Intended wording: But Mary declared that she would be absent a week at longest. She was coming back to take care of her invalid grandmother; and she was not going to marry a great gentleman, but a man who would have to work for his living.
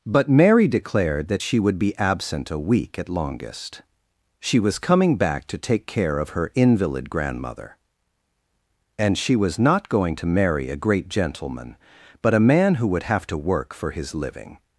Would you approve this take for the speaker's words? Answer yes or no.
yes